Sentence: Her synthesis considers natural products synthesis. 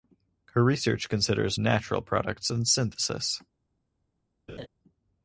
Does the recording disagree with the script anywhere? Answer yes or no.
yes